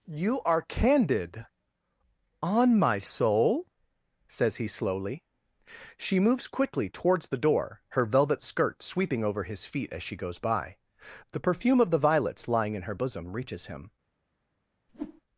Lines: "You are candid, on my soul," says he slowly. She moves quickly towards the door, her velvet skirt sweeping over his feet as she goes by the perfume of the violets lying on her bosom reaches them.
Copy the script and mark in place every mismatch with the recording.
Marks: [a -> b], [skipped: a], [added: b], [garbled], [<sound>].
"You are candid, on my soul," says he slowly. She moves quickly towards the door, her velvet skirt sweeping over his feet as she goes by the perfume of the violets lying [on -> in] her bosom reaches [them. -> him] [whoosh]